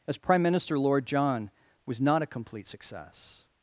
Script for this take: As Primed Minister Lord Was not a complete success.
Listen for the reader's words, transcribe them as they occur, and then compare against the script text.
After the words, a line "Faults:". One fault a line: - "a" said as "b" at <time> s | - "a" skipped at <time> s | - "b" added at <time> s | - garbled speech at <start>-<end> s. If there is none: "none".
As Prime Minister Lord John was not a complete success.
Faults:
- "Primed" said as "Prime" at 0.2 s
- "John" added at 1.1 s